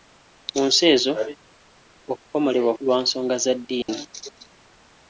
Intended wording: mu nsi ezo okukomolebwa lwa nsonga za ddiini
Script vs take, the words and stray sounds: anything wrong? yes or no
yes